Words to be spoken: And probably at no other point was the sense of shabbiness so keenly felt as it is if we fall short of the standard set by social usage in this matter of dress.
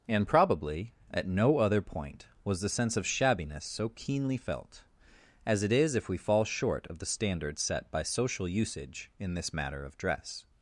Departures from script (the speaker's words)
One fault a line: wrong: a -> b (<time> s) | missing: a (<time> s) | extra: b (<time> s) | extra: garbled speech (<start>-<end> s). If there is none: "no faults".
no faults